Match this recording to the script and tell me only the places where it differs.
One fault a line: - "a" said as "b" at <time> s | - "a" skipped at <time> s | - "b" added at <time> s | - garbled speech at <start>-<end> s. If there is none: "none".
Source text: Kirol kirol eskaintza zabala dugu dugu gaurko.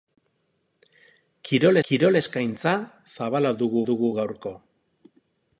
none